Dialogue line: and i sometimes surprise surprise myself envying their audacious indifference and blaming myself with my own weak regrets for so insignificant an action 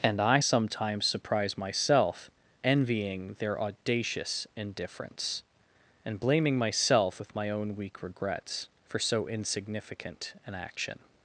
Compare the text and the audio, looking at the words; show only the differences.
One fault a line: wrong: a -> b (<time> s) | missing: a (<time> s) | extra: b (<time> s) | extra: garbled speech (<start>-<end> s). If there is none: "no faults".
missing: surprise (1.6 s)